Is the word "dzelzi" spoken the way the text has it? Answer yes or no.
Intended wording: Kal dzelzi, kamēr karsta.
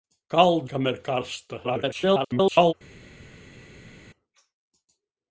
no